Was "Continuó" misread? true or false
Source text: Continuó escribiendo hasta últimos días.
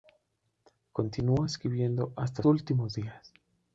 false